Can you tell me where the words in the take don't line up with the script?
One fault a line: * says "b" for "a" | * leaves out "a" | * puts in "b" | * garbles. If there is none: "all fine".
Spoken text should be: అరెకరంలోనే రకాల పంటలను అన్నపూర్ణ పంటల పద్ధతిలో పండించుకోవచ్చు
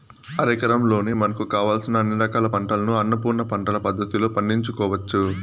* puts in "మనకు కావలసిన అన్ని"